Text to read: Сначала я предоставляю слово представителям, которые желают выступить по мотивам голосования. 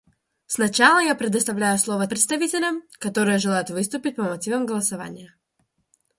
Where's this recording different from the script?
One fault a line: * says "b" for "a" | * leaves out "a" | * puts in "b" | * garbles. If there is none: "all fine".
all fine